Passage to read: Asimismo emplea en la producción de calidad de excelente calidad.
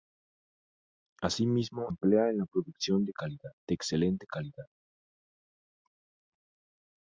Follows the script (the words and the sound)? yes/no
yes